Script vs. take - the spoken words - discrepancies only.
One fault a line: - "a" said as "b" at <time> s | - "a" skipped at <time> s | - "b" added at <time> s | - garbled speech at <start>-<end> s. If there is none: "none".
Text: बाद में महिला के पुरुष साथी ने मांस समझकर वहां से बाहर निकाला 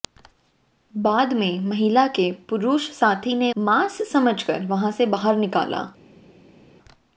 none